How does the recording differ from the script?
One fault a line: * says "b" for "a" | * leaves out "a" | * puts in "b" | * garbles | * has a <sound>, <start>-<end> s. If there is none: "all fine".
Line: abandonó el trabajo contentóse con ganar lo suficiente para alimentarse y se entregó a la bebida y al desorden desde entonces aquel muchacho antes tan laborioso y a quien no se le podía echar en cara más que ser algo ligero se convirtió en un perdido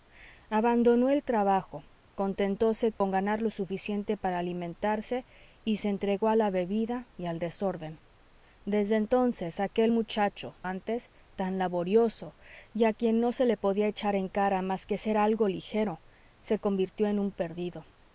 * has a dropout, 3.0-3.0 s